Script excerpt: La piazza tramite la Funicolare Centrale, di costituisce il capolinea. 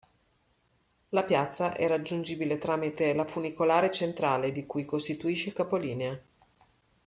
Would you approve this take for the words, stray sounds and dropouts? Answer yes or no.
no